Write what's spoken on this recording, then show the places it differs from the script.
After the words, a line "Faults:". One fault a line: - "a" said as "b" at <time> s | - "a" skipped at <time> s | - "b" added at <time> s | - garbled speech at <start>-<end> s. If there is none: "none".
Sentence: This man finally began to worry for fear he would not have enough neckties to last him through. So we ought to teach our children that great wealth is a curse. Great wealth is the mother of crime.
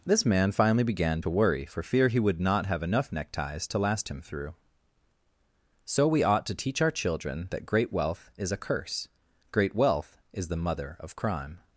This man finally began to worry for fear he would not have enough neckties to last him through. So we ought to teach our children that great wealth is a curse. Great wealth is the mother of crime.
Faults:
none